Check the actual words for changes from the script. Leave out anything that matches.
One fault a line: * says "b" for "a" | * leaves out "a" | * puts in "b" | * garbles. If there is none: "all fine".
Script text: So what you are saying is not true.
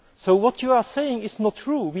all fine